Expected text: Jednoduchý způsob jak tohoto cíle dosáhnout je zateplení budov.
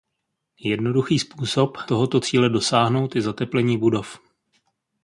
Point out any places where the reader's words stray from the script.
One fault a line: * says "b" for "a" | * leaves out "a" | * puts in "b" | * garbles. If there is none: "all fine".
* leaves out "jak"